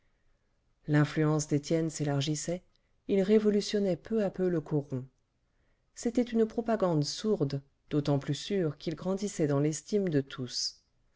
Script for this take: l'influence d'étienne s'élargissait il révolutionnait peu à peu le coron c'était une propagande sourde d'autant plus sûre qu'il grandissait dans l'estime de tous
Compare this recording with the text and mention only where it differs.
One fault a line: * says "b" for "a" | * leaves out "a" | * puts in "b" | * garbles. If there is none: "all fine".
all fine